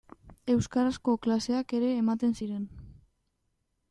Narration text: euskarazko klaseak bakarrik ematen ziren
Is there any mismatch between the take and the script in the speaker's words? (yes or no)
yes